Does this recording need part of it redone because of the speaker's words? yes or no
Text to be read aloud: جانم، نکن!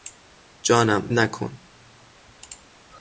no